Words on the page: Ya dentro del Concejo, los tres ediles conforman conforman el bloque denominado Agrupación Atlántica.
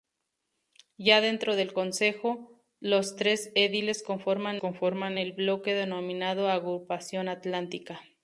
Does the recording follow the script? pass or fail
pass